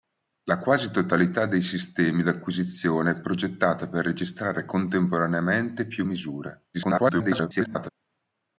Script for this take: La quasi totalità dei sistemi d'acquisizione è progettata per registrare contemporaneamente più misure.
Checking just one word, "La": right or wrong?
right